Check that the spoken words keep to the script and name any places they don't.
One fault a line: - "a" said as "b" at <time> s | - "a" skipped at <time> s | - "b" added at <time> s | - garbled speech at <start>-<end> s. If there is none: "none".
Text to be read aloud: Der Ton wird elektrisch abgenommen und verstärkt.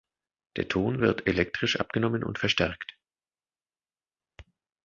none